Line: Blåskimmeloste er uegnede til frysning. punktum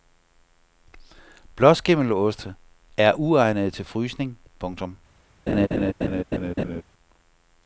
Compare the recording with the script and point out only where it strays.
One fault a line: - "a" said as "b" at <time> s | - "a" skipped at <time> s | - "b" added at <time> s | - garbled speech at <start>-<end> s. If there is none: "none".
none